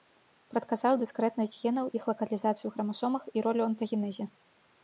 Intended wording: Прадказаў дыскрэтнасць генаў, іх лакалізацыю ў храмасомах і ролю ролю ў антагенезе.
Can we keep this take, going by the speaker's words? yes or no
no